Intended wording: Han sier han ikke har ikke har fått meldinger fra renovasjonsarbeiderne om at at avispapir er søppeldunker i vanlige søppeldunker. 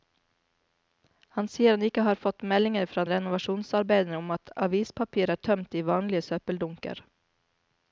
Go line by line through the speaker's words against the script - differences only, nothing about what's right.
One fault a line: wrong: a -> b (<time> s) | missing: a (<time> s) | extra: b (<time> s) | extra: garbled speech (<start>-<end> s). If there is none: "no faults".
missing: ikke har (2.2 s)
missing: at (4.5 s)
wrong: søppeldunker -> tømt (5.5 s)